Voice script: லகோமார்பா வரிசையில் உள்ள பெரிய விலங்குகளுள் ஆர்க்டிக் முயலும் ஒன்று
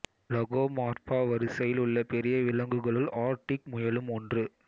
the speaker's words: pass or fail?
pass